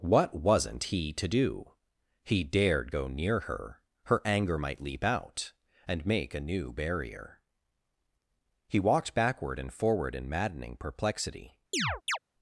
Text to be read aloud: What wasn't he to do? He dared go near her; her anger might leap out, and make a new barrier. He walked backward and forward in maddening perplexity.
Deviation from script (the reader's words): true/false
false